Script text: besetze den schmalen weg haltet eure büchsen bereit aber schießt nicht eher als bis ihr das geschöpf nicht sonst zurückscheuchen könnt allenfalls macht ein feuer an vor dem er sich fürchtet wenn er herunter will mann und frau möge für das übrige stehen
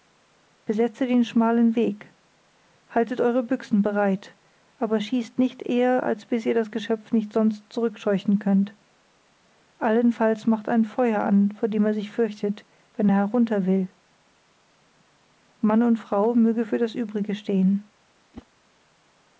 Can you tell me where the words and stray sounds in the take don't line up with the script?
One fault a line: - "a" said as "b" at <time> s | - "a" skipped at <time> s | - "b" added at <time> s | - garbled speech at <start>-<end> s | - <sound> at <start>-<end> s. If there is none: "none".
- whoosh at 18.3-18.5 s